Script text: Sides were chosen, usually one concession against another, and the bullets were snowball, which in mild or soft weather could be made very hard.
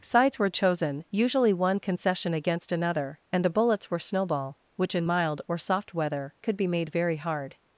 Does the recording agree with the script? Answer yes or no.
yes